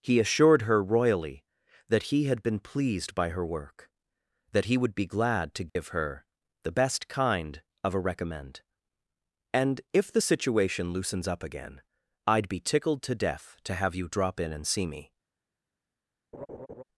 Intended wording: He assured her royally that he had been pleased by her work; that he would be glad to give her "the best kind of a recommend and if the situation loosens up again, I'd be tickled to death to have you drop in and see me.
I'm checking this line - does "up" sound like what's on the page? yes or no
yes